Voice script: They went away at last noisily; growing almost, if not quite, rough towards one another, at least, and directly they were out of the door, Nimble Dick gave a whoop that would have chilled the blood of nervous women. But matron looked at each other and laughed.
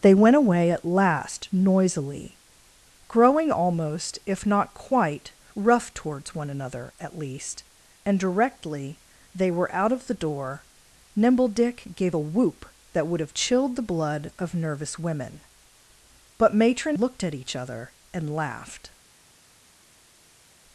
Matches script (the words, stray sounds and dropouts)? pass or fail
pass